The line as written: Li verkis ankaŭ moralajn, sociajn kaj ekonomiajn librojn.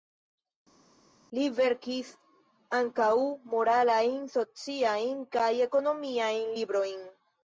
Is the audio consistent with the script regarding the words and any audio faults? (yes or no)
yes